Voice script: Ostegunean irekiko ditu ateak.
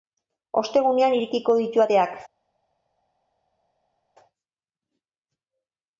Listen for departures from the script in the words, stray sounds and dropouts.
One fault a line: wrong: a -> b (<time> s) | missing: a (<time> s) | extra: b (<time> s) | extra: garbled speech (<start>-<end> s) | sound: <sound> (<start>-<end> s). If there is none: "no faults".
no faults